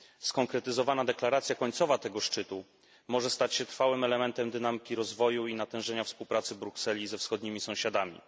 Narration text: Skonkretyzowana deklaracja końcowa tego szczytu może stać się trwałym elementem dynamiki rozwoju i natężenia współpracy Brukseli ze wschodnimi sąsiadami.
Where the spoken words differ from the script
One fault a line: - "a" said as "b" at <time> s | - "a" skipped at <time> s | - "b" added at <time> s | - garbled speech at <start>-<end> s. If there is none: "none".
none